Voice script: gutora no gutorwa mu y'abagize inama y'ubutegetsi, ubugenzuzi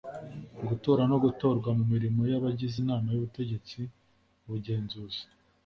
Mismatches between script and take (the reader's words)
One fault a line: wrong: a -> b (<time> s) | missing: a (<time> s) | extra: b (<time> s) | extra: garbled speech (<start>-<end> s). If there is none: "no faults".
extra: mirimo (1.9 s)